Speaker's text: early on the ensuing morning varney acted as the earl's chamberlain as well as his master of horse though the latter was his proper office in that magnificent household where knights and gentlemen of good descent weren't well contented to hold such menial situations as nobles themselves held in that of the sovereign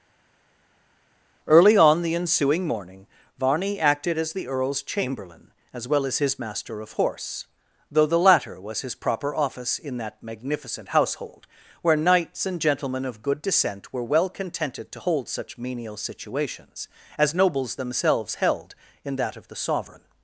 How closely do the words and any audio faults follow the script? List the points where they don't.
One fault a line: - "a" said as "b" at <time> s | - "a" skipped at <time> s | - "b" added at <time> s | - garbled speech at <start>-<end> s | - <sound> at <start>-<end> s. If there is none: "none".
- "weren't" said as "were" at 13.9 s